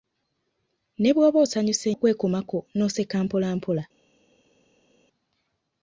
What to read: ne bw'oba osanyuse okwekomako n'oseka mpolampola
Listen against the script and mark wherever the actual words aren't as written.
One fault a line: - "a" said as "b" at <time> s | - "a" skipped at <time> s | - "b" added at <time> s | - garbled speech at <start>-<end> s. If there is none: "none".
none